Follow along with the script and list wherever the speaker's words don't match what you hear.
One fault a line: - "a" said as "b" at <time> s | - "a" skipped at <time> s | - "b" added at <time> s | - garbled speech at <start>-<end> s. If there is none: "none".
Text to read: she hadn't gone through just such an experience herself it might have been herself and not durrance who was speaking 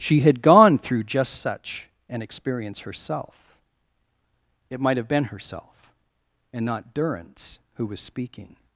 - "hadn't" said as "had" at 0.2 s